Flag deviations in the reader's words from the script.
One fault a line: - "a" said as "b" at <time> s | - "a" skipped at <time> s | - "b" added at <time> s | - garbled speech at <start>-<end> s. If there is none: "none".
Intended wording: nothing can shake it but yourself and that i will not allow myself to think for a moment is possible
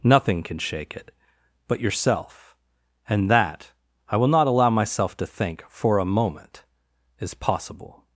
none